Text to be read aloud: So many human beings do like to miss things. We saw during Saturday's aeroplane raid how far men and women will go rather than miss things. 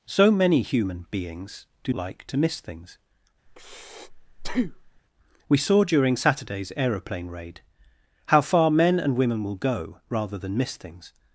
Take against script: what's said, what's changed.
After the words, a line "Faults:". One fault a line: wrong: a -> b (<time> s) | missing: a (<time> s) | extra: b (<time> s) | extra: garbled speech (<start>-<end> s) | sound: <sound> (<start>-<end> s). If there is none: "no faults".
So many human beings do like to miss things. We saw during Saturday's aeroplane raid how far men and women will go rather than miss things.
Faults:
sound: breath (3.5-5.0 s)